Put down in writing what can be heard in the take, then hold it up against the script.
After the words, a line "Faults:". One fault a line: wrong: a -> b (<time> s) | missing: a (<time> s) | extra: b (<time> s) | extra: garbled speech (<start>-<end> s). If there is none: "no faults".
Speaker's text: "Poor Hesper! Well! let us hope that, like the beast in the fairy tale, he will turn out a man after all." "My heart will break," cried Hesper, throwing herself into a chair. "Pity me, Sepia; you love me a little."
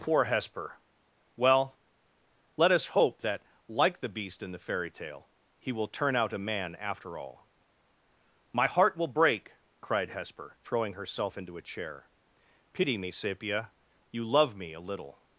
"Poor Hesper! Well! let us hope that, like the beast in the fairy tale, he will turn out a man after all." "My heart will break," cried Hesper, throwing herself into a chair. "Pity me, Sepia; you love me a little."
Faults:
no faults